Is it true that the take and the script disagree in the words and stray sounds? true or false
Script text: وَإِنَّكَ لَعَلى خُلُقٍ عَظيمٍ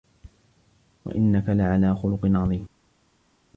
false